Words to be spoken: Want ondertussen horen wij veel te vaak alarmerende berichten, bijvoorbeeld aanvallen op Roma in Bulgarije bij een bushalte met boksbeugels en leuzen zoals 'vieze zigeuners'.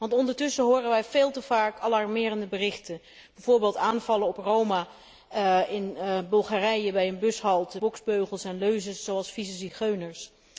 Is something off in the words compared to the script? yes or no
yes